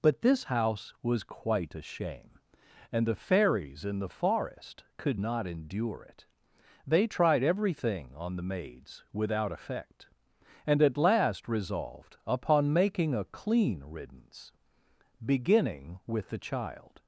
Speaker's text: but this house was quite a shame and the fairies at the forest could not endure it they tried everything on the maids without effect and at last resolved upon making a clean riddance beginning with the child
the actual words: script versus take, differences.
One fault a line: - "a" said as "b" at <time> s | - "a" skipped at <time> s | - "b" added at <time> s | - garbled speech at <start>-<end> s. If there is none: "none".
- "at" said as "in" at 3.9 s